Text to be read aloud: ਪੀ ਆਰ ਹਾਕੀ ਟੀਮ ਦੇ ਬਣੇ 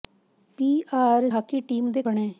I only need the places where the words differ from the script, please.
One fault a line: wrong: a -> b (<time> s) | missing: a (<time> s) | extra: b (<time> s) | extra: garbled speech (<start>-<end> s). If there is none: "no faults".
no faults